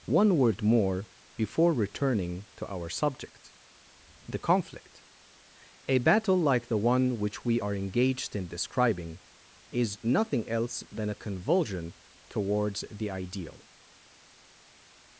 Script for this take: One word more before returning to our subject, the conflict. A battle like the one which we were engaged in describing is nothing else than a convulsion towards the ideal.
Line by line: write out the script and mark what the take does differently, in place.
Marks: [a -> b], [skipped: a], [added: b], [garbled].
One word more before returning to our subject, the conflict. A battle like the one which we [were -> are] engaged in describing is nothing else than a convulsion towards the ideal.